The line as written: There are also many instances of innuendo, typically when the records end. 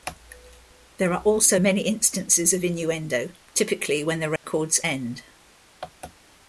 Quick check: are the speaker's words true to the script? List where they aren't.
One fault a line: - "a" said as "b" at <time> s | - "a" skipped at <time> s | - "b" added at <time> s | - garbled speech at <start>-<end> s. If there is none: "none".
none